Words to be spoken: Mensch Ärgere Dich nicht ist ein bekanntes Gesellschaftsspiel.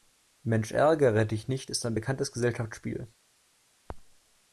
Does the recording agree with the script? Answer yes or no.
yes